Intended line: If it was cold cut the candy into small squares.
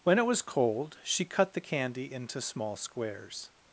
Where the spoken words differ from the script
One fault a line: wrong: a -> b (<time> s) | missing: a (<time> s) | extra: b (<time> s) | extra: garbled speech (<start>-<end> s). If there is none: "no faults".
wrong: If -> When (0.0 s)
extra: she (1.0 s)